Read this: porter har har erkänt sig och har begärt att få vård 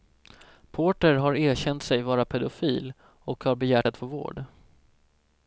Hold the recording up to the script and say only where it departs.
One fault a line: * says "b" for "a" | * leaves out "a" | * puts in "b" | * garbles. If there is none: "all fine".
* leaves out "har"
* puts in "vara pedofil"